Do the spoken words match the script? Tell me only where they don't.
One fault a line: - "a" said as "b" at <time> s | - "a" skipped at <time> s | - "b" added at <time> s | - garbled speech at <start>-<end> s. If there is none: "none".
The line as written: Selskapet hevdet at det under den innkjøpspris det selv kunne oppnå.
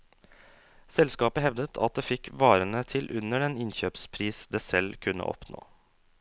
- "fikk varene til" added at 2.1 s